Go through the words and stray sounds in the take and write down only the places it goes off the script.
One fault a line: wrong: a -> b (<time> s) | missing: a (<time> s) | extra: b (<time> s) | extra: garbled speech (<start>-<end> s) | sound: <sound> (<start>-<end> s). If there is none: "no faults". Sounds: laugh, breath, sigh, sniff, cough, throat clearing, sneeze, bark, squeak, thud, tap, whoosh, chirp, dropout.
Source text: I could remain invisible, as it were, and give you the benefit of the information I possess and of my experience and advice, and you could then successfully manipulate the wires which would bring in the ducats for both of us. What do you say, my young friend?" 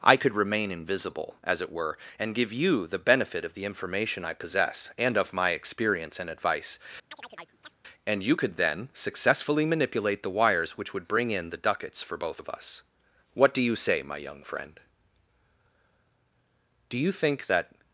sound: chirp (7.1-7.7 s)
extra: Do you think that (16.9 s)